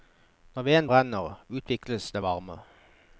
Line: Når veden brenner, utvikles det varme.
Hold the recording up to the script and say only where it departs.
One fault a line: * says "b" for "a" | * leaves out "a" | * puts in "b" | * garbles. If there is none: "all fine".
all fine